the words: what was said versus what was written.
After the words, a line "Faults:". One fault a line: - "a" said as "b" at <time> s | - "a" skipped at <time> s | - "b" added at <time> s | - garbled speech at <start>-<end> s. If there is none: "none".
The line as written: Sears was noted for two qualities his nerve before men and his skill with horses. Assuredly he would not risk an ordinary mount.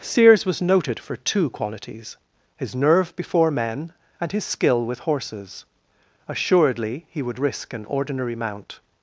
Sears was noted for two qualities his nerve before men and his skill with horses. Assuredly he would risk an ordinary mount.
Faults:
- "not" skipped at 7.4 s